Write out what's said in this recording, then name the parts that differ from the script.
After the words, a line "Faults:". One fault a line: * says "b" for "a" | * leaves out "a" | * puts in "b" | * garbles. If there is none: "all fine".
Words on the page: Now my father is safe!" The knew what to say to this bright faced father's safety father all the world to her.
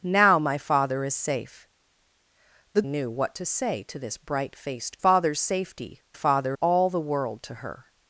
Now my father is safe!" The knew what to say to this bright faced father's safety father all the world to her.
Faults:
all fine